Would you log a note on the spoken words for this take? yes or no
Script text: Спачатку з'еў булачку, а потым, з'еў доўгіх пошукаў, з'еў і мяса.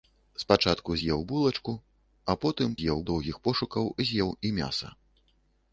no